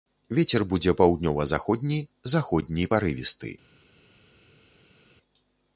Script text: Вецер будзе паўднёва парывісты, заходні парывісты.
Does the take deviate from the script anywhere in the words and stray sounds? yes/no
yes